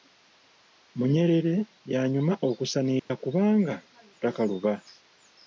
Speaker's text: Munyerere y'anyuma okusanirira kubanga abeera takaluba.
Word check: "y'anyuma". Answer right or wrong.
right